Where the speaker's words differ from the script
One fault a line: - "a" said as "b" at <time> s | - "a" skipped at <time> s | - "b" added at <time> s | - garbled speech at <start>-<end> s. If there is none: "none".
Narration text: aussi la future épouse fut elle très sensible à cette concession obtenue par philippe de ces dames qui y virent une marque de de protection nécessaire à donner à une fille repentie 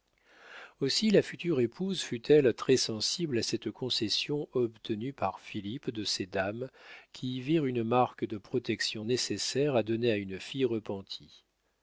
- "de" skipped at 8.4 s